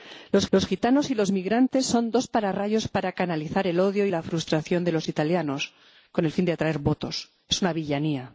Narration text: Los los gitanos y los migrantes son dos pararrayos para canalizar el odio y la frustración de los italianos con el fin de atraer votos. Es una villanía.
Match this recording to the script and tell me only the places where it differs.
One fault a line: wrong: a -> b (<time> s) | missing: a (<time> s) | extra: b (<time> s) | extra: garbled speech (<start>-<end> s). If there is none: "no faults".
no faults